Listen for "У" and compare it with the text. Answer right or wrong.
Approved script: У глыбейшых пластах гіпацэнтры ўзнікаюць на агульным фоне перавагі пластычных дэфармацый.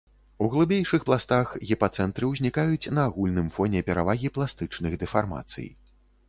right